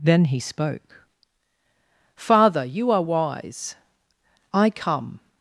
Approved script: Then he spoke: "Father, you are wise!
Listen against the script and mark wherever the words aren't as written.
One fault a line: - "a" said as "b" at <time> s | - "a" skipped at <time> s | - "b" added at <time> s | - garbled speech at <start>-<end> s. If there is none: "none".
- "I come" added at 4.5 s